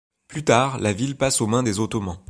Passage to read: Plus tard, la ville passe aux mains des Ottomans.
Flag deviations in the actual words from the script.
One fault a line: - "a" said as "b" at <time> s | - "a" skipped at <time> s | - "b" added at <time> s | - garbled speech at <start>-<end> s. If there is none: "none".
none